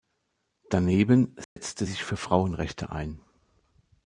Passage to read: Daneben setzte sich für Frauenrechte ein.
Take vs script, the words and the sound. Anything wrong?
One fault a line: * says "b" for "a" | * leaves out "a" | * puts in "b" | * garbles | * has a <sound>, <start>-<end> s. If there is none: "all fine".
* has a dropout, 1.4-1.6 s